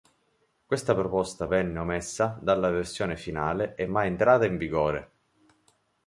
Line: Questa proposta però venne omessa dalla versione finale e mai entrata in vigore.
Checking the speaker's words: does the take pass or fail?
fail